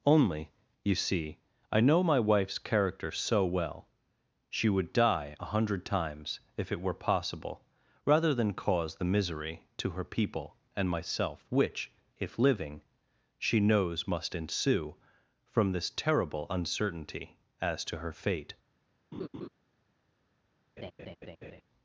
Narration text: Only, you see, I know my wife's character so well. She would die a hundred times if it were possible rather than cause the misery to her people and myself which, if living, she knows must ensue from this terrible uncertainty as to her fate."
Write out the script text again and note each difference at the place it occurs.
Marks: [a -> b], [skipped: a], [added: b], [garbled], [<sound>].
Only, you see, I know my wife's character so well. She would die a hundred times if it were possible rather than cause the misery to her people and myself which, if living, she knows must ensue from this terrible uncertainty as to her fate." [laugh] [laugh]